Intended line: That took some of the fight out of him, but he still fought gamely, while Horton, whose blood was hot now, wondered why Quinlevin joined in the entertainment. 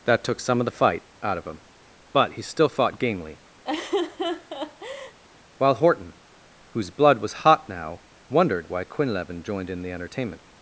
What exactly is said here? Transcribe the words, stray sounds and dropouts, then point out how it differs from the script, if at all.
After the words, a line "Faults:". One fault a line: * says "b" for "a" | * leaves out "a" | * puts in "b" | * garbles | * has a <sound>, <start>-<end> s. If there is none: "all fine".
That took some of the fight out of him, but he still fought gamely, while Horton, whose blood was hot now, wondered why Quinlevin joined in the entertainment.
Faults:
* has a laugh, 3.6-5.2 s